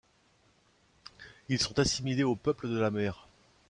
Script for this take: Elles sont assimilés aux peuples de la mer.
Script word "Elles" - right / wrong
wrong